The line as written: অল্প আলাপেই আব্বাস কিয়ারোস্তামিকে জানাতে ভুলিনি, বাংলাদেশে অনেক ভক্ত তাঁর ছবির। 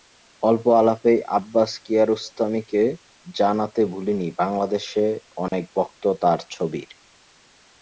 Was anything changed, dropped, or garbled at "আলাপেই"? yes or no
no